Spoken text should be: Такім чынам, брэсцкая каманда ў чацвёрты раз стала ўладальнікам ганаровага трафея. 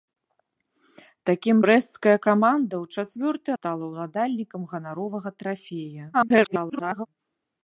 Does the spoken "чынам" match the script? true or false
false